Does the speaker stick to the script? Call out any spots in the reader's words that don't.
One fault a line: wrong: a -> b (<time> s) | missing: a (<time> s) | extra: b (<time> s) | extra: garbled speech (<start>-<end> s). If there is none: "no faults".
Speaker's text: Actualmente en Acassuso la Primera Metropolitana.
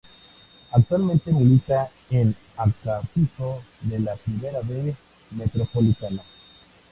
extra: milita (1.3 s)
extra: de (3.8 s)
extra: B (4.6 s)